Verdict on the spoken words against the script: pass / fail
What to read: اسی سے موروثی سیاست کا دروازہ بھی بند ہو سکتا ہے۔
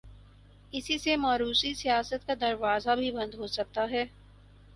pass